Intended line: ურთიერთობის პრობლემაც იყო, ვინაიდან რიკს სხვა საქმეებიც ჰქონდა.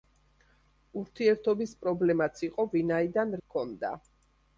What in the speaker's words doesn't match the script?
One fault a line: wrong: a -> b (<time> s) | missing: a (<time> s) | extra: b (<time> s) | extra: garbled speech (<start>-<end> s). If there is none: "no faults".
missing: რიკს სხვა საქმეებიც (3.4 s)